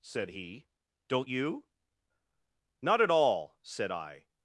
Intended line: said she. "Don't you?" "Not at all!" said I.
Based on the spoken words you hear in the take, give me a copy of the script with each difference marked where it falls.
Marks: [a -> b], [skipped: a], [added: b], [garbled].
said [she. -> he] "Don't you?" "Not at all!" said I.